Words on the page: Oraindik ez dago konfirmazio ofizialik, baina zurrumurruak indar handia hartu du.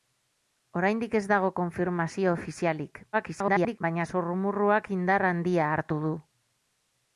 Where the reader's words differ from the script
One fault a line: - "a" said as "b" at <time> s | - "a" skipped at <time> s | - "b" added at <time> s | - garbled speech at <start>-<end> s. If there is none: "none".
- garbled speech at 3.1-3.8 s